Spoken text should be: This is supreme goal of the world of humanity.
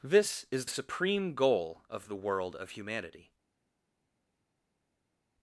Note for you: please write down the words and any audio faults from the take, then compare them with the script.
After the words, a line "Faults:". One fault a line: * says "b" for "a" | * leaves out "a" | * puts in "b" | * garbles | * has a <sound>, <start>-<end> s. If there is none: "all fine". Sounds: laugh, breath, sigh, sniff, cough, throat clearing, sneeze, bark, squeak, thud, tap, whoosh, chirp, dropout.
This is supreme goal of the world of humanity.
Faults:
all fine